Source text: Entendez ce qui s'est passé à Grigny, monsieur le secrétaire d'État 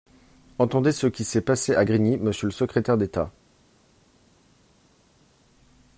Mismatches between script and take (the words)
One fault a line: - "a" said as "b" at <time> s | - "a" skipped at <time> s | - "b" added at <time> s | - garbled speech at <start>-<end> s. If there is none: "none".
none